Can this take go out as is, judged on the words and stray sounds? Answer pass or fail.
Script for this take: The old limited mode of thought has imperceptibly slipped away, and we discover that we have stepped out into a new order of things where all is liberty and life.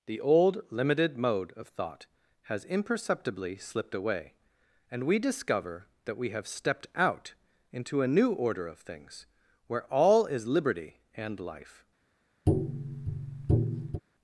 fail